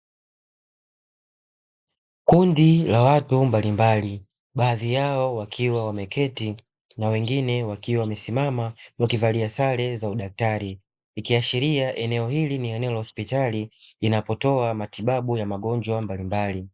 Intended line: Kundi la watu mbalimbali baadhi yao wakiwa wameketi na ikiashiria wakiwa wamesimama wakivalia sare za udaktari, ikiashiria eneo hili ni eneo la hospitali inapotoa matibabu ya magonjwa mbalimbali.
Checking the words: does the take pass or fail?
fail